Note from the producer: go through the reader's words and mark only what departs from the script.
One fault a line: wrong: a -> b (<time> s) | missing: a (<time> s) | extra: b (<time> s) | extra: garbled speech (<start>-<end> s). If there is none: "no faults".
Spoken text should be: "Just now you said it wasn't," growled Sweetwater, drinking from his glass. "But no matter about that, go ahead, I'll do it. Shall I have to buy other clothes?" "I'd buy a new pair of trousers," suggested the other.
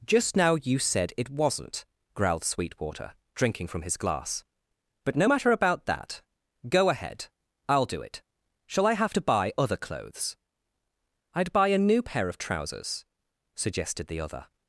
no faults